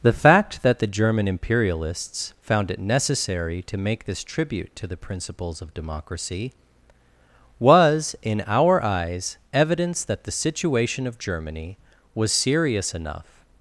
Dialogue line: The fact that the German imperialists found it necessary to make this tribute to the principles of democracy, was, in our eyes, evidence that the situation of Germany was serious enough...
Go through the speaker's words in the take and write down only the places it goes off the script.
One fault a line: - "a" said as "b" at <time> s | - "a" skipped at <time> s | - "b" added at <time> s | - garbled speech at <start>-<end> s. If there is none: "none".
none